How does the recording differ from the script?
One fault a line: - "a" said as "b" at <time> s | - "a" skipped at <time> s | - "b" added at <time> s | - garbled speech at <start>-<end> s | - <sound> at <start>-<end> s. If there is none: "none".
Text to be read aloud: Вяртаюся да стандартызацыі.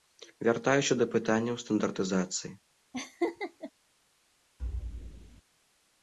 - "пытанняў" added at 1.1 s
- laugh at 2.9-3.7 s
- thud at 4.6-5.4 s